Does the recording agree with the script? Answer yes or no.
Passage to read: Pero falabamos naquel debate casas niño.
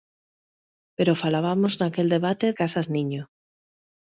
yes